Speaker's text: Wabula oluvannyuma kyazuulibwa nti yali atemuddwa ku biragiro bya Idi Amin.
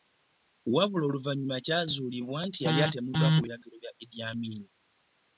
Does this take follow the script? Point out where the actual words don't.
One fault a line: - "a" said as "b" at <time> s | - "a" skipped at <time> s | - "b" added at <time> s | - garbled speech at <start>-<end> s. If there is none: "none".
none